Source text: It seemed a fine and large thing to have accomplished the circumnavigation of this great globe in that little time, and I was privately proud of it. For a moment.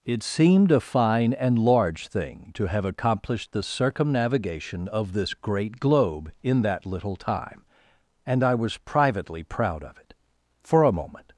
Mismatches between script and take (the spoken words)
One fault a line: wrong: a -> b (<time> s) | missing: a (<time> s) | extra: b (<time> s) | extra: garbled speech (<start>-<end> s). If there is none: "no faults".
no faults